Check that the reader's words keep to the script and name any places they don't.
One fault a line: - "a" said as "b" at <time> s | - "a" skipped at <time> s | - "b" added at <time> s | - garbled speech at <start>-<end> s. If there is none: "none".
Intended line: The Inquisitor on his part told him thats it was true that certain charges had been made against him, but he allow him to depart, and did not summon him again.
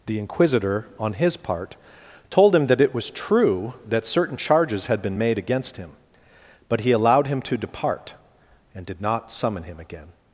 - "thats" said as "that" at 2.7 s
- "allow" said as "allowed" at 6.9 s